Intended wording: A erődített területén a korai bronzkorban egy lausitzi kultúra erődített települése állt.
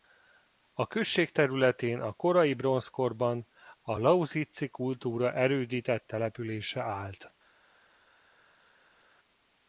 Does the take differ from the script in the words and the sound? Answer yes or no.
yes